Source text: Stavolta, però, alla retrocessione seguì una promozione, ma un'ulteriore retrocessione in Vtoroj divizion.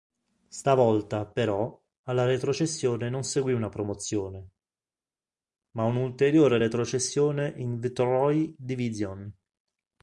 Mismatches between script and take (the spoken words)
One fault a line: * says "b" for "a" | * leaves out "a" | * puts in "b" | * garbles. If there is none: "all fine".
* puts in "non"